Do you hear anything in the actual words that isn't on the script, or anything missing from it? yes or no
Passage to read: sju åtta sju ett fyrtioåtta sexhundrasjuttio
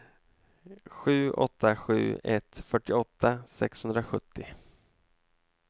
no